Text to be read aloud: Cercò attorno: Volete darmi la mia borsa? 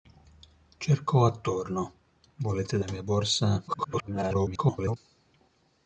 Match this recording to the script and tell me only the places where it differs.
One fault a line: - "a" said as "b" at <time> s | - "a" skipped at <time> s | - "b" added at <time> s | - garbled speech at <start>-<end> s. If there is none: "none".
- "darmi" skipped at 2.8 s
- garbled speech at 3.7-5.0 s